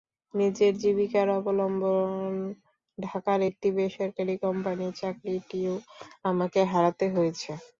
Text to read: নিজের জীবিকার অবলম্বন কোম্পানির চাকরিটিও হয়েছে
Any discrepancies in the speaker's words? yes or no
yes